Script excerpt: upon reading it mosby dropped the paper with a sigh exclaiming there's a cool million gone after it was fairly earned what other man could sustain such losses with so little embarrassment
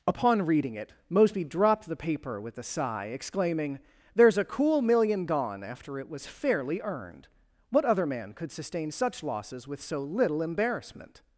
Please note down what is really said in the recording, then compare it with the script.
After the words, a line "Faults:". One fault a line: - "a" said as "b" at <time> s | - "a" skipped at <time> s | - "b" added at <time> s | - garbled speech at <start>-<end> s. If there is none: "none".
upon reading it mosby dropped the paper with a sigh exclaiming there's a cool million gone after it was fairly earned what other man could sustain such losses with so little embarrassment
Faults:
none